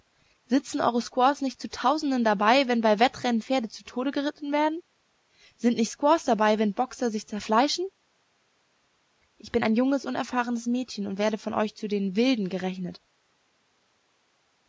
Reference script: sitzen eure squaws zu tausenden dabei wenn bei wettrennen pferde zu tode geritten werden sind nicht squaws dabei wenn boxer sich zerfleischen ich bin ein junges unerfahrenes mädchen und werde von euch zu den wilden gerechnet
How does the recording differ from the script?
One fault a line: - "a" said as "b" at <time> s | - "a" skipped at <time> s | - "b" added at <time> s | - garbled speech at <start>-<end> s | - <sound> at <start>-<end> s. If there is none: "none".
- "nicht" added at 1.4 s